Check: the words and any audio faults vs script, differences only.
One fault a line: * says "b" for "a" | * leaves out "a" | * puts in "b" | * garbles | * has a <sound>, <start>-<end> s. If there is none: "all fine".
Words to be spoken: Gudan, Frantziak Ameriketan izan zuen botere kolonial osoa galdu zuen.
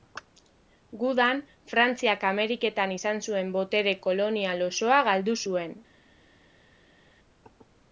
all fine